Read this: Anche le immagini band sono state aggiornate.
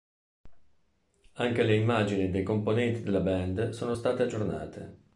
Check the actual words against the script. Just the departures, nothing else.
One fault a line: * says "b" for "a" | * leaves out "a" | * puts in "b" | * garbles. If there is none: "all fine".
* puts in "dei componenti della"